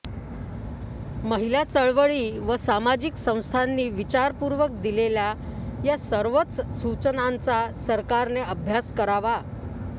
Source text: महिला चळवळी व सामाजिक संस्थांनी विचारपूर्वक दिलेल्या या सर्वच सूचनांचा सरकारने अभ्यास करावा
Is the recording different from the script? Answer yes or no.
no